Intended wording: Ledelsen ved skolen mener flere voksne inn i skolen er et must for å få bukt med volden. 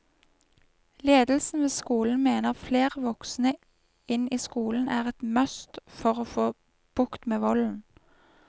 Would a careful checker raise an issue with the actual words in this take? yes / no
no